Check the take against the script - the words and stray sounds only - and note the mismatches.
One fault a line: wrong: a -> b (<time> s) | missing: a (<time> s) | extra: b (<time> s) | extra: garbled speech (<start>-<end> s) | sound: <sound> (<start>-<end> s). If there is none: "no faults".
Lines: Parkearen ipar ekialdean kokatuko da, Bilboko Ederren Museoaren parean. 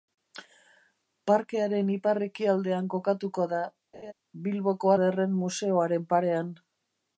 sound: laugh (3.9-4.1 s)